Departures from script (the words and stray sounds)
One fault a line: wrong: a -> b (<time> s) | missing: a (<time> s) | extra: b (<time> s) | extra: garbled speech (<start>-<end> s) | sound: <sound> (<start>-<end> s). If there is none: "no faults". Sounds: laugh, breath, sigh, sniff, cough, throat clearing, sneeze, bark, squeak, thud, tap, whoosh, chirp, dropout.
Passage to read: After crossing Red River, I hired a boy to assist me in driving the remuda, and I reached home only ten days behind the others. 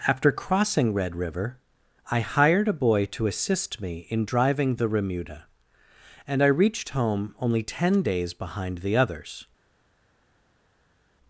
no faults